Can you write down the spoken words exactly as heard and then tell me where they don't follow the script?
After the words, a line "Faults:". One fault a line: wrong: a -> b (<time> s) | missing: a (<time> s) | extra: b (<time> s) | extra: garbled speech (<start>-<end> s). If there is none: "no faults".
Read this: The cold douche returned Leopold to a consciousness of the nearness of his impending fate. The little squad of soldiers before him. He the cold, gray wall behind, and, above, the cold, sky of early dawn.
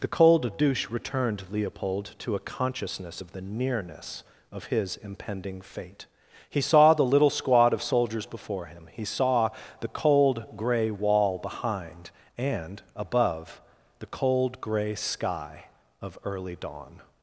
The cold douche returned Leopold to a consciousness of the nearness of his impending fate. He saw the little squad of soldiers before him. He saw the cold, gray wall behind, and, above, the cold, gray sky of early dawn.
Faults:
extra: He saw (6.5 s)
extra: saw (9.0 s)
extra: gray (14.6 s)